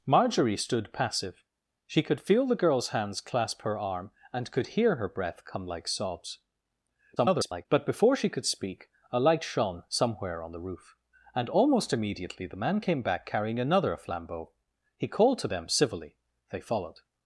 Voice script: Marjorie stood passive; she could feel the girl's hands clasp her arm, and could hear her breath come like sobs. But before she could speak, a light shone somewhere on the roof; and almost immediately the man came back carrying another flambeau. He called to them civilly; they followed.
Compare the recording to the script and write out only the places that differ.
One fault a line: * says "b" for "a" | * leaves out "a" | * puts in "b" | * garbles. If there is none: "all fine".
* garbles